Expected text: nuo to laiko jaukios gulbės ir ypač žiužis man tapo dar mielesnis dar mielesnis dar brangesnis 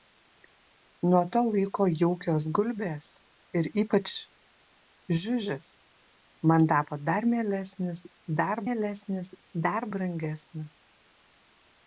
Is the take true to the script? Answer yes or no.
yes